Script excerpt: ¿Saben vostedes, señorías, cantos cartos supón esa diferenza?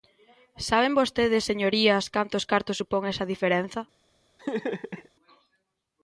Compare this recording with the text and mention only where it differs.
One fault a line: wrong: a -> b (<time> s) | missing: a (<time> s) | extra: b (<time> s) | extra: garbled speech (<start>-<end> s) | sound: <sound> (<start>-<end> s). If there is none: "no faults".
sound: laugh (4.4-5.1 s)